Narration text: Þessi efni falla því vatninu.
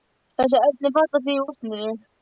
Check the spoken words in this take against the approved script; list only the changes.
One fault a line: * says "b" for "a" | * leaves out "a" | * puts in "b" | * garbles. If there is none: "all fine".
all fine